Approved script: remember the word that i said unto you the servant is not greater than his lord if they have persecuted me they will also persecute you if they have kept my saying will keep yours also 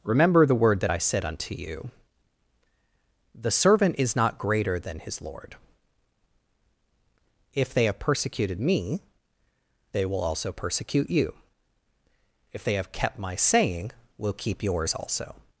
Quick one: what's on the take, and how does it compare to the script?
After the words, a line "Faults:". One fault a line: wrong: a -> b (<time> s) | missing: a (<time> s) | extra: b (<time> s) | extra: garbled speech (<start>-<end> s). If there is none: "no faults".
remember the word that i said unto you the servant is not greater than his lord if they have persecuted me they will also persecute you if they have kept my saying will keep yours also
Faults:
no faults